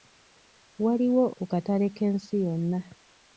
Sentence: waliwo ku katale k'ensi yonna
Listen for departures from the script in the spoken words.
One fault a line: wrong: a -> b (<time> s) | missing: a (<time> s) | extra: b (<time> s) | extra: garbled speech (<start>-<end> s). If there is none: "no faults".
no faults